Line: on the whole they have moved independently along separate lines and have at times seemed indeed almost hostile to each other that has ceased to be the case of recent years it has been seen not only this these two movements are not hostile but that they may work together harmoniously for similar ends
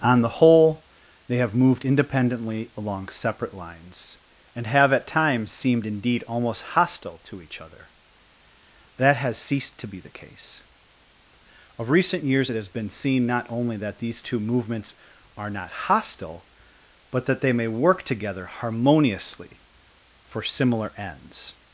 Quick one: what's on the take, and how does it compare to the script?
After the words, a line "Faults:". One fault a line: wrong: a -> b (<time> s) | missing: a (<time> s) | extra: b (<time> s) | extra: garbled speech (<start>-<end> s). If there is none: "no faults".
on the whole they have moved independently along separate lines and have at times seemed indeed almost hostile to each other that has ceased to be the case of recent years it has been seen not only that these two movements are not hostile but that they may work together harmoniously for similar ends
Faults:
wrong: this -> that (13.8 s)